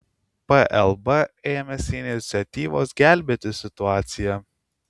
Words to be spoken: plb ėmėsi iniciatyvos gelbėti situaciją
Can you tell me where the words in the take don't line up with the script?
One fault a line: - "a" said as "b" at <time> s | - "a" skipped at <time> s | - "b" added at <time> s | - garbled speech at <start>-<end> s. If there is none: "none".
none